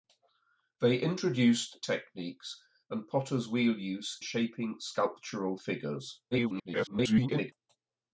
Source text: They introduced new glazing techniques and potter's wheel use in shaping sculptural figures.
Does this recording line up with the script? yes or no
no